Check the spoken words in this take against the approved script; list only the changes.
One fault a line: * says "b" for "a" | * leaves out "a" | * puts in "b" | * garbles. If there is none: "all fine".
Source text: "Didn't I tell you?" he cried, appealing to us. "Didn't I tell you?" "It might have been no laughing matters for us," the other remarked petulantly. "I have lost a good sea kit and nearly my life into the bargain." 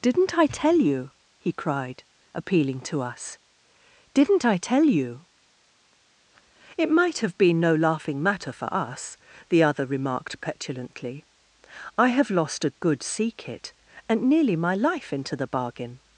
* says "matter" for "matters"